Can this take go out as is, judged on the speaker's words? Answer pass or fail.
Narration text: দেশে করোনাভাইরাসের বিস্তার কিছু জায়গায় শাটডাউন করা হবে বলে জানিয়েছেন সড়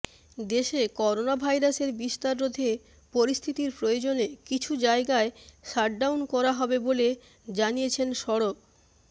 fail